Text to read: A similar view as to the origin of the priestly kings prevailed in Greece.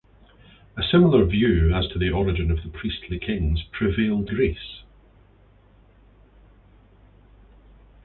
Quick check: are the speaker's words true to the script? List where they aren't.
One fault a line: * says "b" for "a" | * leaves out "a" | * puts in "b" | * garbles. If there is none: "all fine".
* leaves out "in"